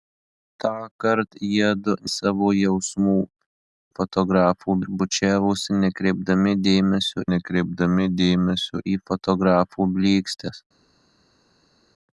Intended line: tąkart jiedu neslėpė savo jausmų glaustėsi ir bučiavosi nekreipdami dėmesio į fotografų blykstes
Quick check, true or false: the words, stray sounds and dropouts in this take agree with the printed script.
false